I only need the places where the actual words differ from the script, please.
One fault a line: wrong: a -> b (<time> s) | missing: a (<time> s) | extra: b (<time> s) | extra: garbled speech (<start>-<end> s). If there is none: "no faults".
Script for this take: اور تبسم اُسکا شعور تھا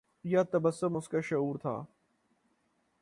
wrong: اور -> یا (0.2 s)